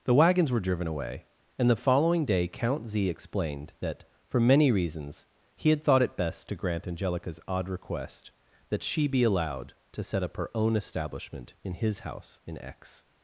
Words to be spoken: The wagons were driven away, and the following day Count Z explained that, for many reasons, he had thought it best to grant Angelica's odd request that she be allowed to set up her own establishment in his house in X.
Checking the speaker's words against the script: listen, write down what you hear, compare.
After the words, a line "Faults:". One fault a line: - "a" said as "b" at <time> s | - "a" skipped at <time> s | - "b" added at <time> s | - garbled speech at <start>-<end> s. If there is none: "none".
The wagons were driven away, and the following day Count Z explained that, for many reasons, he had thought it best to grant Angelica's odd request that she be allowed to set up her own establishment in his house in X.
Faults:
none